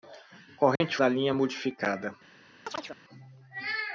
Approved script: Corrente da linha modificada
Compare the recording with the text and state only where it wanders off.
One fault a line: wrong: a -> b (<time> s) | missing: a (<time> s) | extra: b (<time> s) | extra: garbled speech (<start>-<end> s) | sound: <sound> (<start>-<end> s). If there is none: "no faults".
sound: dropout (0.8-0.8 s)
sound: chirp (2.7-3.0 s)